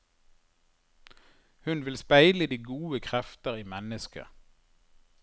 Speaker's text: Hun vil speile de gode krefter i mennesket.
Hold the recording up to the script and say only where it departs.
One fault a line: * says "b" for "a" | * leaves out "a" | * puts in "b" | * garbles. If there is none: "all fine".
all fine